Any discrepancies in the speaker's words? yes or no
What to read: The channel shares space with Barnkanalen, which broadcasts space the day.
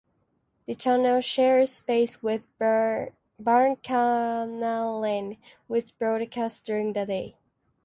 yes